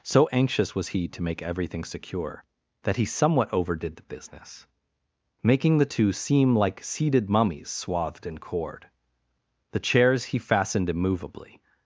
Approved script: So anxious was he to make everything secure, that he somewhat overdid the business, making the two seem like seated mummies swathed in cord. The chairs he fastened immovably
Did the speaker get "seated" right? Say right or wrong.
right